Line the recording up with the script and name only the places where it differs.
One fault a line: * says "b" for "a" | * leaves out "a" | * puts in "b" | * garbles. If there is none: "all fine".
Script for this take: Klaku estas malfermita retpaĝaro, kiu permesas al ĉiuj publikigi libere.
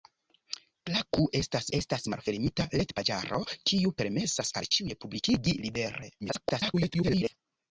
* puts in "estas"
* garbles